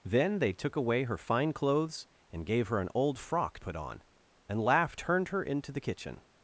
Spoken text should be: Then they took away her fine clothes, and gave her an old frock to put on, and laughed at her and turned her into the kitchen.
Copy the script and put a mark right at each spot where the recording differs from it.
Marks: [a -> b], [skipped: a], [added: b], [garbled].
Then they took away her fine clothes, and gave her an old frock [skipped: to] put on, and laughed [skipped: at her and] turned her into the kitchen.